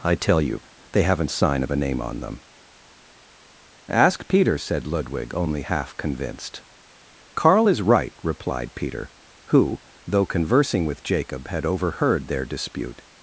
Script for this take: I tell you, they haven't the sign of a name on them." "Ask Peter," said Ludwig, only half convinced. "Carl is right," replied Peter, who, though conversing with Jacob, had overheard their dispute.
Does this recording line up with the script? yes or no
no